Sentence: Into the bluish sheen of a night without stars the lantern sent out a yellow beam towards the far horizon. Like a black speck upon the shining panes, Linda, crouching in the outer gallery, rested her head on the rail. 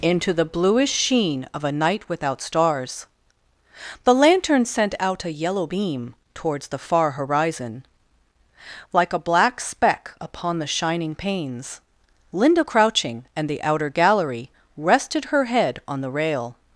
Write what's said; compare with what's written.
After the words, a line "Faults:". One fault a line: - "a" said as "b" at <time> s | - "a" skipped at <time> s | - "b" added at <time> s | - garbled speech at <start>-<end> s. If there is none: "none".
Into the bluish sheen of a night without stars the lantern sent out a yellow beam towards the far horizon. Like a black speck upon the shining panes, Linda, crouching and the outer gallery, rested her head on the rail.
Faults:
- "in" said as "and" at 13.3 s